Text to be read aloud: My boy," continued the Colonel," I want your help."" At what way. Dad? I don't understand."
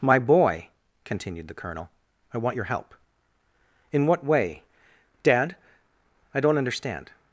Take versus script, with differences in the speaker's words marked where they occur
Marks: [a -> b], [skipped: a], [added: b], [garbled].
My boy," continued the Colonel," I want your help."" [At -> In] what way. Dad? I don't understand."